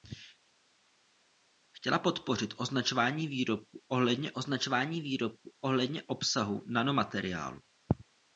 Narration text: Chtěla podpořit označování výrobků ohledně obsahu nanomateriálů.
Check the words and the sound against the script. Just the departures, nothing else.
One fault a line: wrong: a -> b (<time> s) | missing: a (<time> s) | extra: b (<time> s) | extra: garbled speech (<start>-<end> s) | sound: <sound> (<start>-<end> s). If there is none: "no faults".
extra: označování výrobků ohledně (4.3 s)